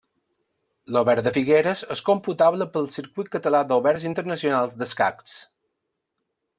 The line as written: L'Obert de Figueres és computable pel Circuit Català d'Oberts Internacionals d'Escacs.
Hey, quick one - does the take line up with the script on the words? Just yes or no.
yes